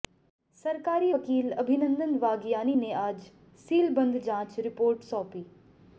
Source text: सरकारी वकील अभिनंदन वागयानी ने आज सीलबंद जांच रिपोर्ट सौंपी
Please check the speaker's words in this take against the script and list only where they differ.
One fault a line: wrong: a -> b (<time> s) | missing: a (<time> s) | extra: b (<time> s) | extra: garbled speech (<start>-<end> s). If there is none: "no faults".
no faults